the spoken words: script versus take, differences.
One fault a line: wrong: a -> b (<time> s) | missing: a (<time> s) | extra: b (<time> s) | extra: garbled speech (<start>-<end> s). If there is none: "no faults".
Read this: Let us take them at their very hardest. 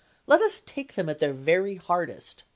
no faults